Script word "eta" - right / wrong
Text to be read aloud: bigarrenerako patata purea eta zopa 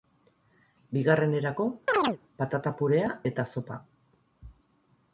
right